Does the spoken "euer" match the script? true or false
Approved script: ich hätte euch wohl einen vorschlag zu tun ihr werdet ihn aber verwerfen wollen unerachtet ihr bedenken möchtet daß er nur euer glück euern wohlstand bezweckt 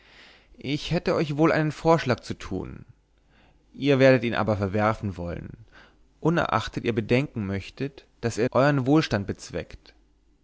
false